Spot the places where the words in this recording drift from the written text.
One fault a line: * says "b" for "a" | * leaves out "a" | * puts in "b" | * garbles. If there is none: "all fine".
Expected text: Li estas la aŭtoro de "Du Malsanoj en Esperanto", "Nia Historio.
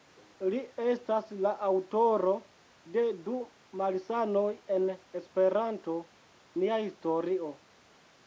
all fine